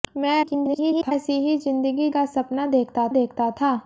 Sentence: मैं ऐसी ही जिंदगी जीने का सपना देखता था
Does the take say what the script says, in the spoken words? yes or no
no